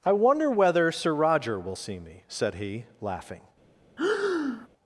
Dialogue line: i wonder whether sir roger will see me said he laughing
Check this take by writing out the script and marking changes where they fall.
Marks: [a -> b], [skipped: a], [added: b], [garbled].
i wonder whether sir roger will see me said he laughing